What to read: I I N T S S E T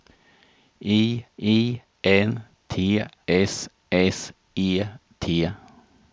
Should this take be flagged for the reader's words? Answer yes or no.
no